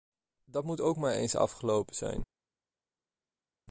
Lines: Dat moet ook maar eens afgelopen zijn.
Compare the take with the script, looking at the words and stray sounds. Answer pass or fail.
pass